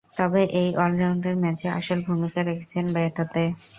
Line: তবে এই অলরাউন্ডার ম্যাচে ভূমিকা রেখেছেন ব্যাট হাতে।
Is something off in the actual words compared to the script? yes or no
yes